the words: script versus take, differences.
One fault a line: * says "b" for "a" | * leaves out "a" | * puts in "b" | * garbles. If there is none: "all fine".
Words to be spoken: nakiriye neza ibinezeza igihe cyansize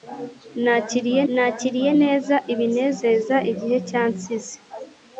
* puts in "nakiriye"